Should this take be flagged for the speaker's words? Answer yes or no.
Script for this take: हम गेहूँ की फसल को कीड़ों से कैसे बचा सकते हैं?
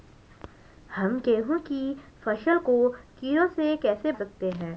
yes